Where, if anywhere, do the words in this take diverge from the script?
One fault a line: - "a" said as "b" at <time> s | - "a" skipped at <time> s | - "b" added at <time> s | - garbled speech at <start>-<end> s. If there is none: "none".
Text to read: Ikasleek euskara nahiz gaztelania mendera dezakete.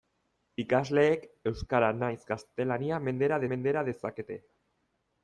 - "mendera" added at 3.5 s